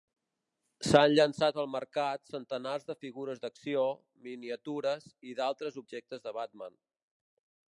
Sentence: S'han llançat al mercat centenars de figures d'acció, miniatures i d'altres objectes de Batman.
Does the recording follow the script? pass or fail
pass